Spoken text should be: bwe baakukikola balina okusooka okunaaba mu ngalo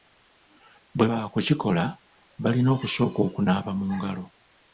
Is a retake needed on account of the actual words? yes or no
no